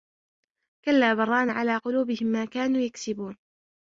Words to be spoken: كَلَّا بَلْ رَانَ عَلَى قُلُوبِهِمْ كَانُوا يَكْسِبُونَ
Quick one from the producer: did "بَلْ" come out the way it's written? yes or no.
yes